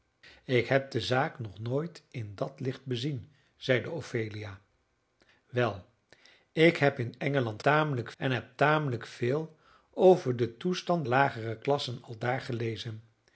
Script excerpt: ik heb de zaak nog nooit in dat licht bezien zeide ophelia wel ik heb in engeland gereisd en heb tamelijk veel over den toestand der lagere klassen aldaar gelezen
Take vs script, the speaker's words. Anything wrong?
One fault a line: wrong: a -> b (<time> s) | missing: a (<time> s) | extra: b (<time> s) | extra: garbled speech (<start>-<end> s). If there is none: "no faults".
wrong: gereisd -> tamelijk (7.6 s)
missing: der (11.0 s)